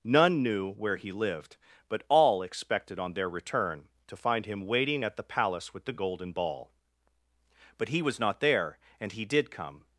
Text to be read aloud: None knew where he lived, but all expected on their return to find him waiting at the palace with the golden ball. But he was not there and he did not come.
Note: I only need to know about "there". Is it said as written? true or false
true